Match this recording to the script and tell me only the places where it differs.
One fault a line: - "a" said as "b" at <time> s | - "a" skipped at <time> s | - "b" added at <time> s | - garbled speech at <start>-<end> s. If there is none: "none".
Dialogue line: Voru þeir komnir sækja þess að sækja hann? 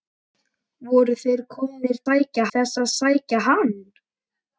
none